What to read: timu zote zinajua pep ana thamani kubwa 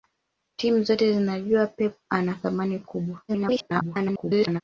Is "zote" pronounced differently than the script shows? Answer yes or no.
no